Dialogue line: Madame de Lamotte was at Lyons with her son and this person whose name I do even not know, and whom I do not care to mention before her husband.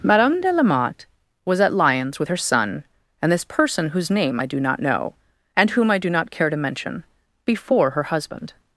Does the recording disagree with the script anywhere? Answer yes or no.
yes